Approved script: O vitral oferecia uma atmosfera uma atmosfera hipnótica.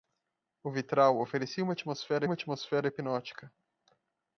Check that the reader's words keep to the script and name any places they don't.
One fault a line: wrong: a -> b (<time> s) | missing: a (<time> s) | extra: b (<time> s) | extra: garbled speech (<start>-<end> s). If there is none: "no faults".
no faults